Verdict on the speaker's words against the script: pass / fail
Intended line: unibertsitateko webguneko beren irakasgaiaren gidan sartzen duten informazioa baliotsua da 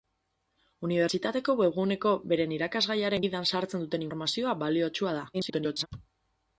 fail